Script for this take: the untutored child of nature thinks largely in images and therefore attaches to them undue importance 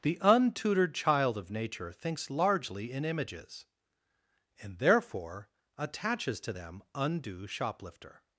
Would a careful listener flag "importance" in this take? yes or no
yes